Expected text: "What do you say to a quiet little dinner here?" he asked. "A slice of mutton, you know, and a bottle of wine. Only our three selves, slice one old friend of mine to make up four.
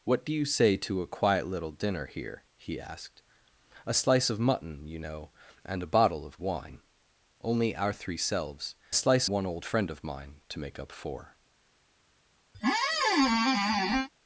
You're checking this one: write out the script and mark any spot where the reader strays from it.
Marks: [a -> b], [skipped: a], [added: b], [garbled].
"What do you say to a quiet little dinner here?" he asked. "A slice of mutton, you know, and a bottle of wine. Only our three selves, slice one old friend of mine to make up four.